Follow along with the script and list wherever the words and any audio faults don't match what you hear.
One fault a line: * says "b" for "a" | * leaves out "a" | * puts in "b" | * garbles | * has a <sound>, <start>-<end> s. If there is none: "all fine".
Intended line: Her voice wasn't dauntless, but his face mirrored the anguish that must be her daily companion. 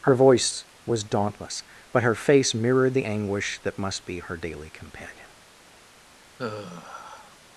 * says "was" for "wasn't"
* says "her" for "his"
* has a sigh, 6.4-7.4 s